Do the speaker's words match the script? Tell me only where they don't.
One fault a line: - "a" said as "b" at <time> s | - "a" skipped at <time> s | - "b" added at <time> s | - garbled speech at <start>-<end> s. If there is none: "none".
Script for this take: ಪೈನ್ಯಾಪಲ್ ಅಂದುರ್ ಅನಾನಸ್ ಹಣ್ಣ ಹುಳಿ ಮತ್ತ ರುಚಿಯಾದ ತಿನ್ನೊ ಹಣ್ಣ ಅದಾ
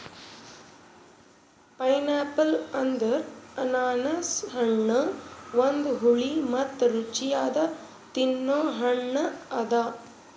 - "ಒಂದು" added at 5.6 s